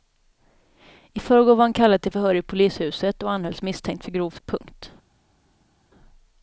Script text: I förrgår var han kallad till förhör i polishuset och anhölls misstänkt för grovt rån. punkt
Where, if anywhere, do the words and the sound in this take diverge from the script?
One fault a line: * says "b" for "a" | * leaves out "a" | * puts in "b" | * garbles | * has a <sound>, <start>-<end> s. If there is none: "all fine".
* leaves out "rån"